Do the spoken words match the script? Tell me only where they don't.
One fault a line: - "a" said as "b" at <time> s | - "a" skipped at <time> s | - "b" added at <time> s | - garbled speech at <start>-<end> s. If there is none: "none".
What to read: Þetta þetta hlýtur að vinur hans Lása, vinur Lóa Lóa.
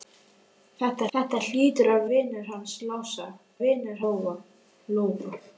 none